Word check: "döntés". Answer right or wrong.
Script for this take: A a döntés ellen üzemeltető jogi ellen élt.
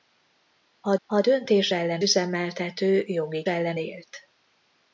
right